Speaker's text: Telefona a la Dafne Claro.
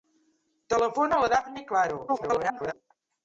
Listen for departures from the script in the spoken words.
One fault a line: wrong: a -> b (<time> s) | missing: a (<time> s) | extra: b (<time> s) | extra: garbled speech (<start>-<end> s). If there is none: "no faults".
extra: garbled speech (2.1-2.7 s)